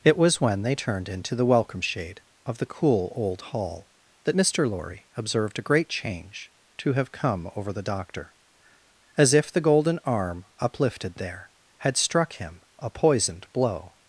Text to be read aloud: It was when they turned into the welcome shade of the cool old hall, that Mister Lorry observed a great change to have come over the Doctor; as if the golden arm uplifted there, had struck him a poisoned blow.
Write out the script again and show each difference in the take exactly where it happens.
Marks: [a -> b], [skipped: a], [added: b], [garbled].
It was when they turned into the welcome shade of the cool old hall, that Mister Lorry observed a great change to have come over the Doctor; as if the golden arm uplifted there, had struck him a poisoned blow.